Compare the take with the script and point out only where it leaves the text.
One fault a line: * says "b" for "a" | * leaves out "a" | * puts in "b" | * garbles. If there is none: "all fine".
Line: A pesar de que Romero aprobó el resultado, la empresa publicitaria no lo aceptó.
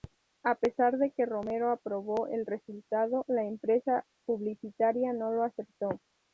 all fine